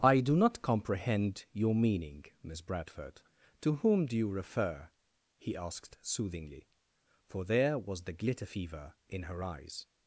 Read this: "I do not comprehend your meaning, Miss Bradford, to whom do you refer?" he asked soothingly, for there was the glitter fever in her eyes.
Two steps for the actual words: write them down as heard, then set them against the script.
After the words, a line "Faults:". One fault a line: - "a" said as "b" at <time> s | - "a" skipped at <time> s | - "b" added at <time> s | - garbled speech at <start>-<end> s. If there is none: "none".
"I do not comprehend your meaning, Miss Bradford, to whom do you refer?" he asked soothingly, for there was the glitter fever in her eyes.
Faults:
none